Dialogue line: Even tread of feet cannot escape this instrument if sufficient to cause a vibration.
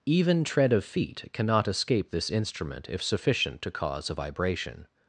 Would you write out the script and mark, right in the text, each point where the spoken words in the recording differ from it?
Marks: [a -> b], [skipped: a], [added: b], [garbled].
Even tread of feet cannot escape this instrument if sufficient to cause a vibration.